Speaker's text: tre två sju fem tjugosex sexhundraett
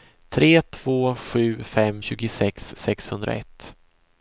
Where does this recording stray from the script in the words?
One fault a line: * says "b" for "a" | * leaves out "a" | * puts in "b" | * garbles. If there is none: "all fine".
all fine